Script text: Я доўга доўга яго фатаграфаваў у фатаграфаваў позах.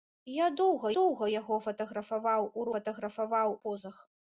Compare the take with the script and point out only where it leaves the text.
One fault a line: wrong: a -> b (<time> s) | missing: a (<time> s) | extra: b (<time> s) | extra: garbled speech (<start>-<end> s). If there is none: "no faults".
no faults